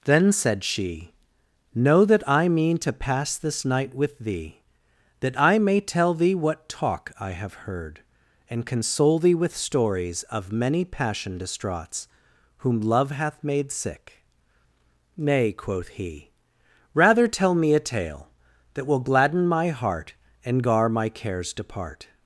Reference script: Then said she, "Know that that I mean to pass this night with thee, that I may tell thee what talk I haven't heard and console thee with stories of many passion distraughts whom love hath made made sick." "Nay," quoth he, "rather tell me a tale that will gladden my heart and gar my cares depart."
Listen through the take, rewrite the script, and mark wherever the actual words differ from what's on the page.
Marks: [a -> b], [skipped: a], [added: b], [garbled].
Then said she, "Know that [skipped: that] I mean to pass this night with thee, that I may tell thee what talk I [haven't -> have] heard and console thee with stories of many passion distraughts whom love hath made [skipped: made] sick." "Nay," quoth he, "rather tell me a tale that will gladden my heart and gar my cares depart."